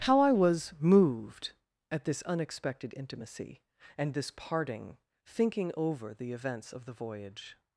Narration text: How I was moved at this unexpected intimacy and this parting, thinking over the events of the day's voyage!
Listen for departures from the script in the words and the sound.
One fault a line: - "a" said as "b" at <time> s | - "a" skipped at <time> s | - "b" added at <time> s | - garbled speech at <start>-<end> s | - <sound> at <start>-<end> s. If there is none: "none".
- "day's" skipped at 6.9 s